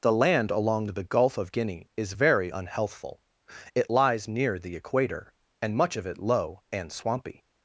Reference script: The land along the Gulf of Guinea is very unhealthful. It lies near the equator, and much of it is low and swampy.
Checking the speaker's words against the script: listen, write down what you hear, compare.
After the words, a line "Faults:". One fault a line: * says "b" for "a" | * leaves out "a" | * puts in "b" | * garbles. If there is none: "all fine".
The land along the Gulf of Guinea is very unhealthful. It lies near the equator, and much of it low and swampy.
Faults:
* leaves out "is"